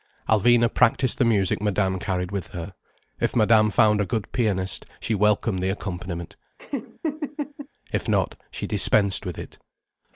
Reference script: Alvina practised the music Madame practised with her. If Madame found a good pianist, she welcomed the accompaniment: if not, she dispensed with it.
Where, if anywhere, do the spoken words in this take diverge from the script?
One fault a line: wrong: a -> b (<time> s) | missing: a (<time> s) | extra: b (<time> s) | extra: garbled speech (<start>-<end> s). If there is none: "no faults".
wrong: practised -> carried (2.0 s)